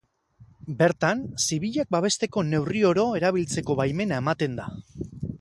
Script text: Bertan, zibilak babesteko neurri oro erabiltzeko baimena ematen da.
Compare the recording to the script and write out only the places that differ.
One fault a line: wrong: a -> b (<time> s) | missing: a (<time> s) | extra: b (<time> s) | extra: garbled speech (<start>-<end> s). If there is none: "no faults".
no faults